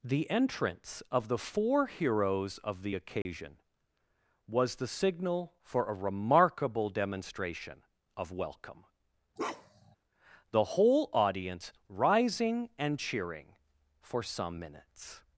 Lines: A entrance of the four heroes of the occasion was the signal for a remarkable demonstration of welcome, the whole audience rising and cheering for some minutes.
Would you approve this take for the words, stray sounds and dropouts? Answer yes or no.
no